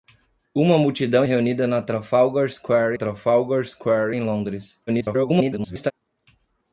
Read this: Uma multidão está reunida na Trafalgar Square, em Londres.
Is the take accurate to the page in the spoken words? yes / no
no